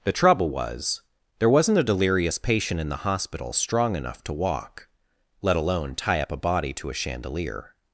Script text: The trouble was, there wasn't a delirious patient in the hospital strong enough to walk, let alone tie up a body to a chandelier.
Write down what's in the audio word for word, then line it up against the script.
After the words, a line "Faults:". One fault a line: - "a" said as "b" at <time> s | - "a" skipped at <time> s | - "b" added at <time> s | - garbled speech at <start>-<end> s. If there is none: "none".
The trouble was, there wasn't a delirious patient in the hospital strong enough to walk, let alone tie up a body to a chandelier.
Faults:
none